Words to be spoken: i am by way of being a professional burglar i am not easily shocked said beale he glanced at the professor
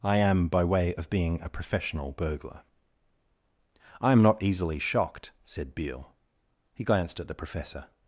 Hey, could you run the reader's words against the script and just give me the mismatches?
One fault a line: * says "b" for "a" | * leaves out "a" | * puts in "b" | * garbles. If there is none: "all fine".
all fine